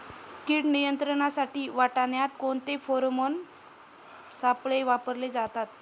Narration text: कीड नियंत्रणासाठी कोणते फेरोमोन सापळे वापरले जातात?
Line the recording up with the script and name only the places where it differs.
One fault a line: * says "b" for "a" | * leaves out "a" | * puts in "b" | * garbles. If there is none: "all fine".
* puts in "वाटाण्यात"